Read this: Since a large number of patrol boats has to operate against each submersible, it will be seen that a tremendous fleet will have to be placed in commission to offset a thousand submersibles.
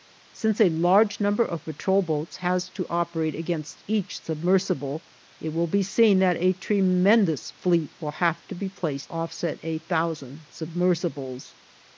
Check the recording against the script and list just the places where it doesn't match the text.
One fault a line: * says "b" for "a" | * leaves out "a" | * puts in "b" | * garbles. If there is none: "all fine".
* leaves out "in commission to"